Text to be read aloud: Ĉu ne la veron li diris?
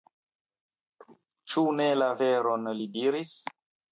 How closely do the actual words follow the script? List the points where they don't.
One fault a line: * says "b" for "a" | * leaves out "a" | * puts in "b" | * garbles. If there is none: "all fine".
all fine